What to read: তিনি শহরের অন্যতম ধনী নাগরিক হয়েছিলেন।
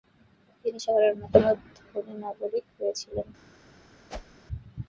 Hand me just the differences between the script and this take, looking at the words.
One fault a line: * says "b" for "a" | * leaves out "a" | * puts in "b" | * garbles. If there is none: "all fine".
all fine